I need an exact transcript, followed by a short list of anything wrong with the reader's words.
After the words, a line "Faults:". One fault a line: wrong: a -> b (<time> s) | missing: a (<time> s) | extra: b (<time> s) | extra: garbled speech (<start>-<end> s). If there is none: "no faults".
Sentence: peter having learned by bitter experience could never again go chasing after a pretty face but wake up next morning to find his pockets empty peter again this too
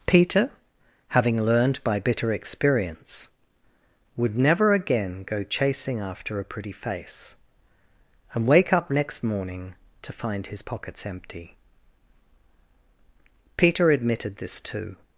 peter having learned by bitter experience would never again go chasing after a pretty face and wake up next morning to find his pockets empty peter admitted this too
Faults:
wrong: could -> would (4.2 s)
wrong: but -> and (8.3 s)
wrong: again -> admitted (13.9 s)